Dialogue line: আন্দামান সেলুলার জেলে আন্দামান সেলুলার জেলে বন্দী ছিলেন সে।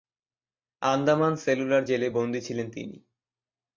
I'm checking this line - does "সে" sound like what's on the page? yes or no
no